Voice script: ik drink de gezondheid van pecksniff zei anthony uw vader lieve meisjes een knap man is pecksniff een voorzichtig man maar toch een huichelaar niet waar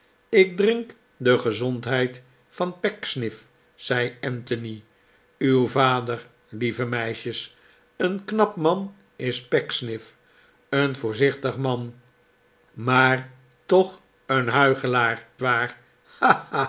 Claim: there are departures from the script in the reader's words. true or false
true